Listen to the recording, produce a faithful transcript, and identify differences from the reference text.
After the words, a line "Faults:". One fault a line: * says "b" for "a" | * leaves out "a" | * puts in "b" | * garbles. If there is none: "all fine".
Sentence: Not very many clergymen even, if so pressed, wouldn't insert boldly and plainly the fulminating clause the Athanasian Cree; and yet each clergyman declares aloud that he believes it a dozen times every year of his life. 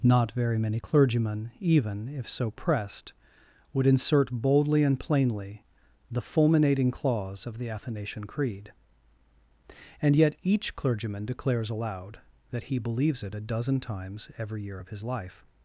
Not very many clergymen even, if so pressed, would insert boldly and plainly the fulminating clause of the Athanasian Creed; and yet each clergyman declares aloud that he believes it a dozen times every year of his life.
Faults:
* says "would" for "wouldn't"
* puts in "of"
* says "Creed" for "Cree"